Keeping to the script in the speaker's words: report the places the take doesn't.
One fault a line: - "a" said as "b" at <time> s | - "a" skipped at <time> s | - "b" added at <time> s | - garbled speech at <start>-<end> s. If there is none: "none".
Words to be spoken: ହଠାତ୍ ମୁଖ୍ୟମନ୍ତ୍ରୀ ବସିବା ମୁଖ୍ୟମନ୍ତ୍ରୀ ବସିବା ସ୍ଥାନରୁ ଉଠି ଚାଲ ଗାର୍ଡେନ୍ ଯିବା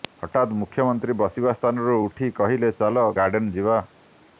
- "ମୁଖ୍ୟମନ୍ତ୍ରୀ ବସିବା" skipped at 1.5 s
- "କହିଲେ" added at 2.4 s